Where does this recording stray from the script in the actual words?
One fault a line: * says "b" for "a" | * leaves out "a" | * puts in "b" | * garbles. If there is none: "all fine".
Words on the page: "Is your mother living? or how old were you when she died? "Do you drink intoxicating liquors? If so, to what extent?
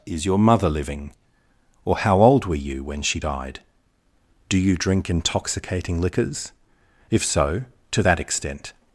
* says "that" for "what"